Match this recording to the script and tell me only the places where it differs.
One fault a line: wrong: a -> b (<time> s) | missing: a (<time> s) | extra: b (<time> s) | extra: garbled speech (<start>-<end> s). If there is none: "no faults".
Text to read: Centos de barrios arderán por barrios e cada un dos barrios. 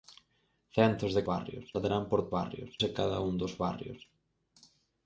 no faults